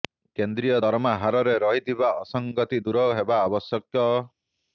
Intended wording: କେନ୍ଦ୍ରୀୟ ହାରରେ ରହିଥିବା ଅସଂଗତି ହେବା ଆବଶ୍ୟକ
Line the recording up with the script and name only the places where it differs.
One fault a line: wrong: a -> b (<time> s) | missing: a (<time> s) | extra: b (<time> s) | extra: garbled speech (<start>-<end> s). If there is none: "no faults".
extra: ଦରମା (0.8 s)
extra: ଦୂର (2.8 s)